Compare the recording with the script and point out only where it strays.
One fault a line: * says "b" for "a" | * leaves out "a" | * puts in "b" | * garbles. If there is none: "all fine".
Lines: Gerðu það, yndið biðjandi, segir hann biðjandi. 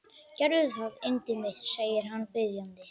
* says "mitt" for "biðjandi"